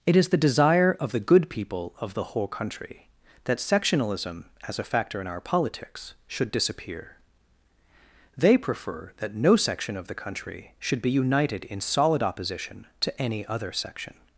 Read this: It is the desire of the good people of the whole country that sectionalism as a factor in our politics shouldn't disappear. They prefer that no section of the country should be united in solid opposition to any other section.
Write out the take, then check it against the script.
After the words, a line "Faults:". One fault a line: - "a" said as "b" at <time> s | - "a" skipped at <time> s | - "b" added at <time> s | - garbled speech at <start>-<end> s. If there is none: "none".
It is the desire of the good people of the whole country that sectionalism as a factor in our politics should disappear. They prefer that no section of the country should be united in solid opposition to any other section.
Faults:
- "shouldn't" said as "should" at 6.3 s